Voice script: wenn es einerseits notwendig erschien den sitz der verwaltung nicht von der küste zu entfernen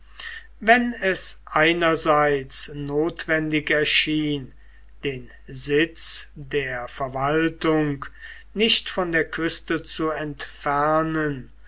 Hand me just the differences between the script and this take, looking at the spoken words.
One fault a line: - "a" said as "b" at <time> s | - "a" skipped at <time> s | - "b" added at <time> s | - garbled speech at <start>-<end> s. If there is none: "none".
none